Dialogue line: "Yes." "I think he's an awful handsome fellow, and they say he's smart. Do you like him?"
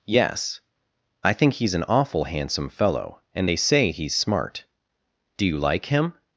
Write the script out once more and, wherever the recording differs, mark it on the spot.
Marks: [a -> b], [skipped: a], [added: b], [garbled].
"Yes." "I think he's an awful handsome fellow, and they say he's smart. Do you like him?"